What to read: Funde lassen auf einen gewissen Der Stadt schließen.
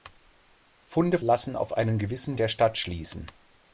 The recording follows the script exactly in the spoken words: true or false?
true